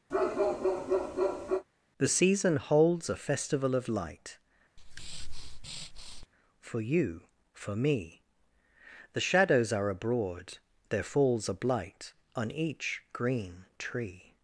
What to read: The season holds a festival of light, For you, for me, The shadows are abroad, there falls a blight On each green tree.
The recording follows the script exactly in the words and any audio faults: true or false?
false